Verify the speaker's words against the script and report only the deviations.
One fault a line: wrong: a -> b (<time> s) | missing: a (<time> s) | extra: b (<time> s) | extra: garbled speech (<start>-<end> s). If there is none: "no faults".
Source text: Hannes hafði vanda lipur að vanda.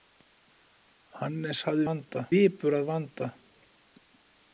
no faults